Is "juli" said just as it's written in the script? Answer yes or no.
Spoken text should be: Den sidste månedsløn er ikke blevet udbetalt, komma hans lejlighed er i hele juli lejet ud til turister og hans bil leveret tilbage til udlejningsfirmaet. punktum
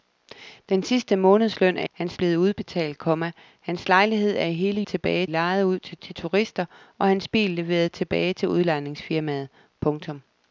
no